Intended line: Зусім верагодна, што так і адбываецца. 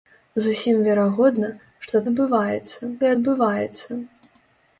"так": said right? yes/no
no